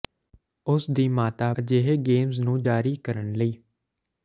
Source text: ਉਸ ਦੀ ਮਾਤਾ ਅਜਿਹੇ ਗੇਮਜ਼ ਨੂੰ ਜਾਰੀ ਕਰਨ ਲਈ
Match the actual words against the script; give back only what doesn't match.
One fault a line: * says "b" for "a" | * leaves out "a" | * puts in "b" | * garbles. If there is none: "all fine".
all fine